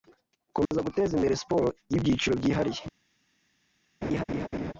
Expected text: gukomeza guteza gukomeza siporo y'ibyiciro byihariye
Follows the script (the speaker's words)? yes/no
no